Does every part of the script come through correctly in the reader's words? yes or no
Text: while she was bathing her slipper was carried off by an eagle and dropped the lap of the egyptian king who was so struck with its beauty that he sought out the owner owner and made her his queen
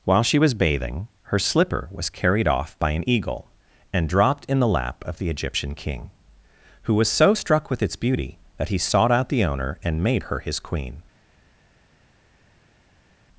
no